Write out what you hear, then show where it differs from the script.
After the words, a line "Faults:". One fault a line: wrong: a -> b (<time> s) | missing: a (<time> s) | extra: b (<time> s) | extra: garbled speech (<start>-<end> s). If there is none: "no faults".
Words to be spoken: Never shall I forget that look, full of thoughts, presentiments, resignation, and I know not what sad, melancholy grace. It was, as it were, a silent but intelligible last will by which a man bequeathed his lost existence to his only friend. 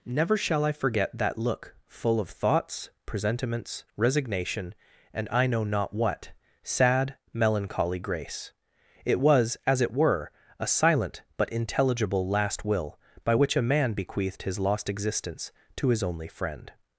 Never shall I forget that look, full of thoughts, presentiments, resignation, and I know not what sad, melancholy grace. It was, as it were, a silent but intelligible last will by which a man bequeathed his lost existence to his only friend.
Faults:
no faults